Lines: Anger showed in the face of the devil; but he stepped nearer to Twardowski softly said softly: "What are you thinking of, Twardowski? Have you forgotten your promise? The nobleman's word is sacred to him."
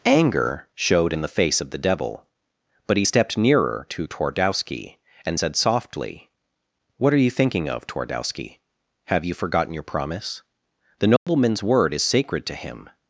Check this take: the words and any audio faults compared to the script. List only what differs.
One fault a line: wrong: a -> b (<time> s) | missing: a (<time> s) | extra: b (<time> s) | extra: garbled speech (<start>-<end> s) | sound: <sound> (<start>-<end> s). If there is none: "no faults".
wrong: softly -> and (5.2 s)
sound: dropout (11.2-11.3 s)